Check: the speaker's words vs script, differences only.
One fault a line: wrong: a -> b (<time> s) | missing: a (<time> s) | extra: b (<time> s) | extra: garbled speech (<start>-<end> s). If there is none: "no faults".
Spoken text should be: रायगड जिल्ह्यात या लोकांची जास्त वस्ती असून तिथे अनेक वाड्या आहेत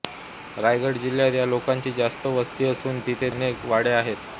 no faults